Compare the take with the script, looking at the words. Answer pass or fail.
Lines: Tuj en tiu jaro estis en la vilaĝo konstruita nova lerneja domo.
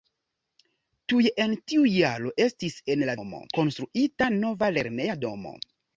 fail